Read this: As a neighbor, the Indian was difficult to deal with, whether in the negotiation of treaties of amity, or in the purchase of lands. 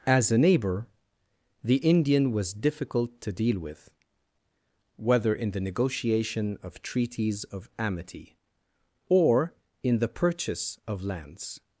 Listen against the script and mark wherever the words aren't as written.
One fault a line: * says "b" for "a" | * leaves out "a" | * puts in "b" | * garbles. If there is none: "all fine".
all fine